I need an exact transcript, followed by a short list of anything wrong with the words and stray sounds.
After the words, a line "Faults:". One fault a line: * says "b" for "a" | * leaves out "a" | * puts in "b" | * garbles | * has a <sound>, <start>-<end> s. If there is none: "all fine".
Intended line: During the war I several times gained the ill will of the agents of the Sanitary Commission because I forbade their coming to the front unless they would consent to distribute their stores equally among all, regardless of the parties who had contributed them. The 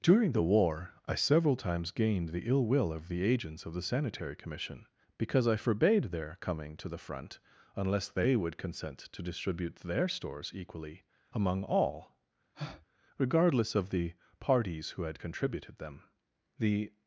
During the war I several times gained the ill will of the agents of the Sanitary Commission because I forbade their coming to the front unless they would consent to distribute their stores equally among all, regardless of the parties who had contributed them. The
Faults:
* has a breath, 12.5-12.9 s